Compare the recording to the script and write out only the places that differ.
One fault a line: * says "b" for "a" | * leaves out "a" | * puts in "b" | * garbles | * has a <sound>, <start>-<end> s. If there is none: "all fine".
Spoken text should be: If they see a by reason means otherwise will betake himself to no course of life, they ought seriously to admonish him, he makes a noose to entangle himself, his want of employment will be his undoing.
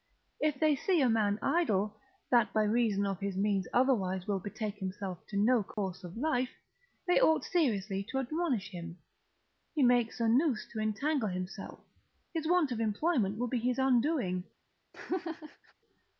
* puts in "man idle that"
* puts in "of his"
* has a dropout, 5.7-5.8 s
* has a laugh, 14.9-15.7 s